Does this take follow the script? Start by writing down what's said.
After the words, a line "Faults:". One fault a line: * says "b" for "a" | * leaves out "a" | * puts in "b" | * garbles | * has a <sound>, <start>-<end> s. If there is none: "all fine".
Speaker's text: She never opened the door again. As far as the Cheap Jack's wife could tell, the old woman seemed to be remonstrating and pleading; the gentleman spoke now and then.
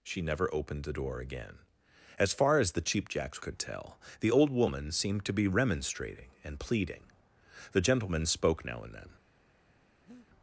She never opened the door again. As far as the Cheap Jack's could tell, the old woman seemed to be remonstrating and pleading; the gentleman spoke now and then.
Faults:
* leaves out "wife"
* has a breath, 10.1-10.3 s